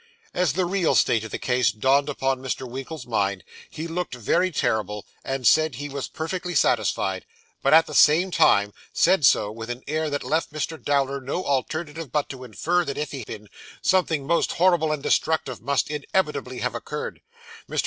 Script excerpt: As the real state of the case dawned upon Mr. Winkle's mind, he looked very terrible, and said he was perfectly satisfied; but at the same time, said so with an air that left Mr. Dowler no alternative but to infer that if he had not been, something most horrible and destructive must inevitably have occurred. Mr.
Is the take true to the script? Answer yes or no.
no